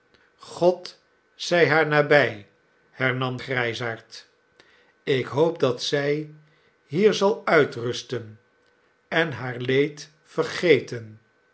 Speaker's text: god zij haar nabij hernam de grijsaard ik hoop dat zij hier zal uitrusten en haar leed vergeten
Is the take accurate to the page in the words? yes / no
no